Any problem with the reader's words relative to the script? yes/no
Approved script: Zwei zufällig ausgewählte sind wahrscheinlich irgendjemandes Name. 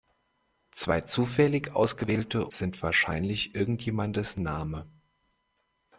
no